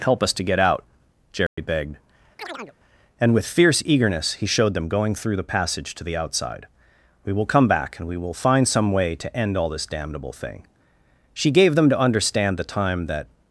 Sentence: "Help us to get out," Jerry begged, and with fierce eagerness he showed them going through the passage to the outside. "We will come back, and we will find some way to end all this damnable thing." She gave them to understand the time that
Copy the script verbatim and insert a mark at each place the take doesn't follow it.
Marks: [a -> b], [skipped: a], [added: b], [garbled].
"Help us to get out," Jerry begged, and with fierce eagerness he showed them going through the passage to the outside. "We will come back, and we will find some way to end all this damnable thing." She gave them to understand the time that